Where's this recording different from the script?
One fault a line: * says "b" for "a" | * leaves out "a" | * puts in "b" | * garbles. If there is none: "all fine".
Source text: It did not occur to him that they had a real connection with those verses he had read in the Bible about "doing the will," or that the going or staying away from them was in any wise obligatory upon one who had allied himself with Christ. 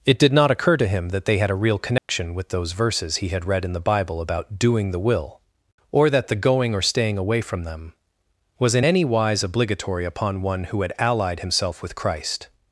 all fine